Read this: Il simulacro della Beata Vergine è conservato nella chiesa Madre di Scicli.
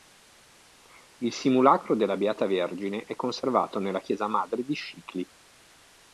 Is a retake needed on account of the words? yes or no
no